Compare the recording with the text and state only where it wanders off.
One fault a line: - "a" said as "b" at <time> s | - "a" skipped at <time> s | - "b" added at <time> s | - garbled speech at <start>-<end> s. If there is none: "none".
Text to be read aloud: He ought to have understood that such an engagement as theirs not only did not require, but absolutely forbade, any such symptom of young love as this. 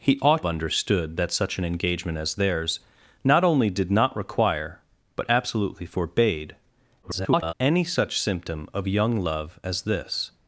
- "to have" skipped at 0.4 s
- garbled speech at 7.0-7.5 s